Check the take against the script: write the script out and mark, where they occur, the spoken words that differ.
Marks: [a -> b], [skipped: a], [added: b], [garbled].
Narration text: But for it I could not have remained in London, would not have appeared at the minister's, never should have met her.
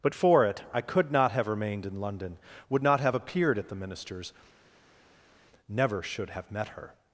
But for it I could not have remained in London, would not have appeared at the minister's, never should have met her.